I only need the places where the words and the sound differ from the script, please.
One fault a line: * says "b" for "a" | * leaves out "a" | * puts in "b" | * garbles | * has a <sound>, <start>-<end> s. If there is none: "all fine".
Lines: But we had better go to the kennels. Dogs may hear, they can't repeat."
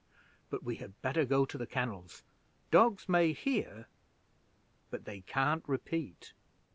* puts in "but"